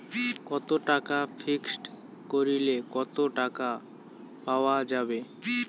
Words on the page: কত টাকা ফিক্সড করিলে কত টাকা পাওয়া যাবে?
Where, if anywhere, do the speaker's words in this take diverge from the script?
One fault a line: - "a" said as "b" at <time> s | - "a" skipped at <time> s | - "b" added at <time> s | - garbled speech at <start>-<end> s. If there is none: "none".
none